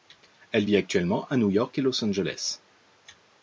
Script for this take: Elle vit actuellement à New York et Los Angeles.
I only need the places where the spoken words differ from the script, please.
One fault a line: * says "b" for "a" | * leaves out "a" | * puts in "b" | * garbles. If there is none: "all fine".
all fine